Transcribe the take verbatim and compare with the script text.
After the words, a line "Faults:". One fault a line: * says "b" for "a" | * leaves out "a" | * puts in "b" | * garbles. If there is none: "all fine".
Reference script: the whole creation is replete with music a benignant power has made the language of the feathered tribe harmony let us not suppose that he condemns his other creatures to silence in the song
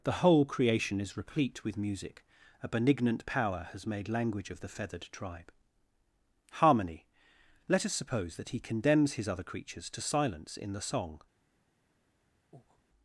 the whole creation is replete with music a benignant power has made language of the feathered tribe harmony let us suppose that he condemns his other creatures to silence in the song
Faults:
* leaves out "the"
* leaves out "not"